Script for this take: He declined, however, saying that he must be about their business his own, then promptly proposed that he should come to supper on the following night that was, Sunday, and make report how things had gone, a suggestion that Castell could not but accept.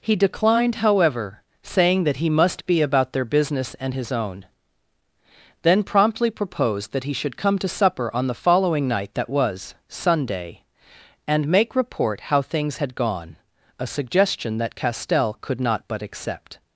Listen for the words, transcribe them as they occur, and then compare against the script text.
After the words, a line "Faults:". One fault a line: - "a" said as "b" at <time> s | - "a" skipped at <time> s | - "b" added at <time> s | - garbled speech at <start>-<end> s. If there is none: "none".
He declined, however, saying that he must be about their business and his own, then promptly proposed that he should come to supper on the following night that was, Sunday, and make report how things had gone, a suggestion that Castell could not but accept.
Faults:
- "and" added at 3.8 s